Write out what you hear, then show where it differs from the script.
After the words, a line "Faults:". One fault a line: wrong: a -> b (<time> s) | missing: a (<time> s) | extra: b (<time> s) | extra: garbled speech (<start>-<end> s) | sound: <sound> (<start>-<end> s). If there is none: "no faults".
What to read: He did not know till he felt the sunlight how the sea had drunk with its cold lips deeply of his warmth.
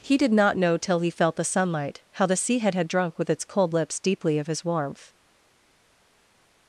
He did not know till he felt the sunlight how the sea had had drunk with its cold lips deeply of his warmth.
Faults:
extra: had (2.7 s)